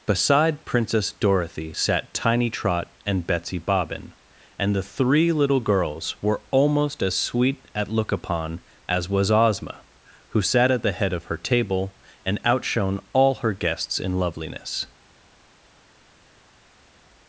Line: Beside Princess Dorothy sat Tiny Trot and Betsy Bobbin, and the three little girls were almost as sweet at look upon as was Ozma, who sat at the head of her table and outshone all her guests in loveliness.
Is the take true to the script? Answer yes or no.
yes